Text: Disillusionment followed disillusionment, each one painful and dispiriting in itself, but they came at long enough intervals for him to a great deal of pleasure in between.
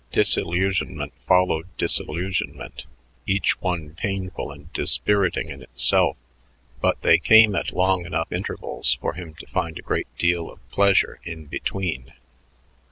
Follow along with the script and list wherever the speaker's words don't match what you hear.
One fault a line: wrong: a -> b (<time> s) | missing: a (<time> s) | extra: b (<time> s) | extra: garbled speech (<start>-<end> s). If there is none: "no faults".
extra: find (9.5 s)